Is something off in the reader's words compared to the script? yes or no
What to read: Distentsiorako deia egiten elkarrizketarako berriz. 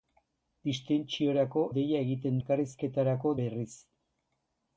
no